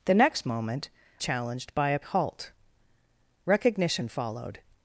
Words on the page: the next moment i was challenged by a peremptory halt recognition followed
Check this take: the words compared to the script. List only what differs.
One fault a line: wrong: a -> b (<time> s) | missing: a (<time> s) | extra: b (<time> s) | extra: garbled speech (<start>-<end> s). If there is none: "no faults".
missing: i was (0.9 s)
missing: peremptory (2.0 s)